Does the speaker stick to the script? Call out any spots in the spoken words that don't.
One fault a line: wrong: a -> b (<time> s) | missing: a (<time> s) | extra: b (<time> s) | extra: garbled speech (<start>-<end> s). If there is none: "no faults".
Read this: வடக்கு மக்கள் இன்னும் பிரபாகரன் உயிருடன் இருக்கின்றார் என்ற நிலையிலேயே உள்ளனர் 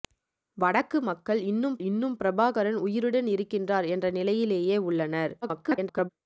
extra: இன்னும் (1.8 s)
extra: garbled speech (5.4-6.1 s)